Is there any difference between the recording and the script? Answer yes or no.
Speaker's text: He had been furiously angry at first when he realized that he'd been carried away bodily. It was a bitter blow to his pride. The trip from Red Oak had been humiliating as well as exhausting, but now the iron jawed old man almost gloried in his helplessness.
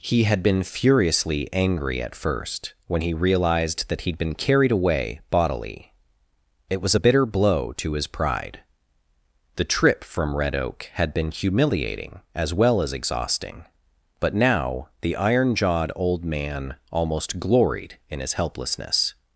no